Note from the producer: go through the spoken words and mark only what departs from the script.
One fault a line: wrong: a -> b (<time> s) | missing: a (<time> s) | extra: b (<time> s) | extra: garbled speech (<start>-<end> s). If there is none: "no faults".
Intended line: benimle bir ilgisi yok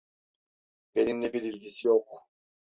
no faults